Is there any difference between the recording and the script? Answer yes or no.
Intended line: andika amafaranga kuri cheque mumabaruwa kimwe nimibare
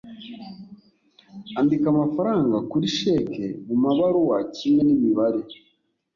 no